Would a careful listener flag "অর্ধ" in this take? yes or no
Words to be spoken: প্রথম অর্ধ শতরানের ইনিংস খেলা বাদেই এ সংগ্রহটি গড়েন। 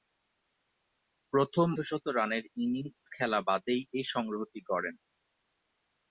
yes